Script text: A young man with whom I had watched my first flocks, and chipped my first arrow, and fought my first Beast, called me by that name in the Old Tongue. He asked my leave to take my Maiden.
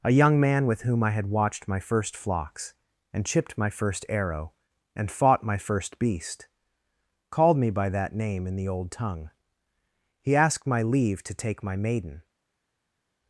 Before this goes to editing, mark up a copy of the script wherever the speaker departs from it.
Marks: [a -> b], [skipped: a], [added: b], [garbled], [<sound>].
A young man with whom I had watched my first flocks, and chipped my first arrow, and fought my first Beast, called me by that name in the Old Tongue. He asked my leave to take my Maiden.